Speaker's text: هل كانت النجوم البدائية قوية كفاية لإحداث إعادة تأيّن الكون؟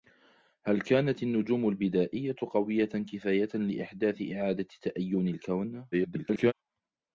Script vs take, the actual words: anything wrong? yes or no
yes